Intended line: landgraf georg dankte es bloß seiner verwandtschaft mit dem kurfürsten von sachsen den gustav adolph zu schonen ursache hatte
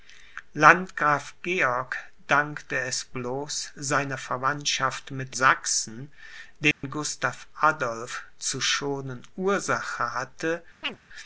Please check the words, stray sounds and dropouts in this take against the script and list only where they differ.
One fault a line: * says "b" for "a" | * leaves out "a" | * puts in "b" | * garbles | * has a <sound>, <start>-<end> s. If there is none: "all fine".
* leaves out "dem kurfürsten von"
* has a dropout, 6.7-6.8 s
* has a chirp, 10.8-11.0 s